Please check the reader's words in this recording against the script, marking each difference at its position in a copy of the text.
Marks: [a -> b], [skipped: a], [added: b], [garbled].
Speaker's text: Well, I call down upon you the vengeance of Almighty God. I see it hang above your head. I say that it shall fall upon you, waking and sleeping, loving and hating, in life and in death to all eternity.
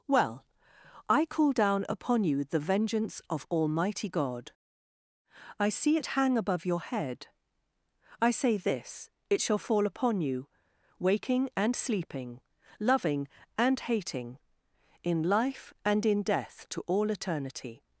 Well, I call down upon you the vengeance of Almighty God. I see it hang above your head. I say [that -> this] it shall fall upon you, waking and sleeping, loving and hating, in life and in death to all eternity.